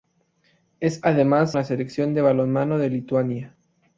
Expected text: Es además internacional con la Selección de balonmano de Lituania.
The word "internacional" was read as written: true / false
false